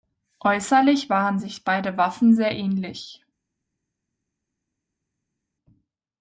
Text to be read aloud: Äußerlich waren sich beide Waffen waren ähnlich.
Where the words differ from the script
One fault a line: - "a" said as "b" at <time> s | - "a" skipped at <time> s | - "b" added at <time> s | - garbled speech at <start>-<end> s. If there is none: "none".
- "waren" said as "sehr" at 2.3 s